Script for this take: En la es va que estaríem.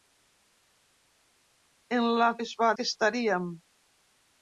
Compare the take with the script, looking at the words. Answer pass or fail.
pass